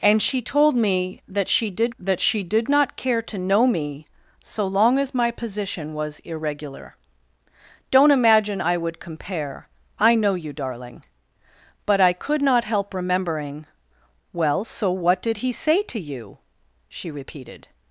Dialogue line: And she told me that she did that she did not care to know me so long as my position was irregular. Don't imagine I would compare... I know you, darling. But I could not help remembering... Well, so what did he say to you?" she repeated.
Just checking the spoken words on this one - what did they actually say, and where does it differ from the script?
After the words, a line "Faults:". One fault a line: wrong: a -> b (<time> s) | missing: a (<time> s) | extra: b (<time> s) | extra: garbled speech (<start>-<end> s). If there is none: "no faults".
And she told me that she did that she did not care to know me so long as my position was irregular. Don't imagine I would compare... I know you, darling. But I could not help remembering... Well, so what did he say to you?" she repeated.
Faults:
no faults